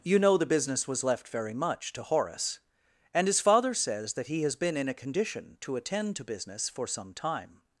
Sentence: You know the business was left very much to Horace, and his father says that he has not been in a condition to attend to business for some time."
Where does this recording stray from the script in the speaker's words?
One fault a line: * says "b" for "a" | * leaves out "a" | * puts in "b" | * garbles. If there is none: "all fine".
* leaves out "not"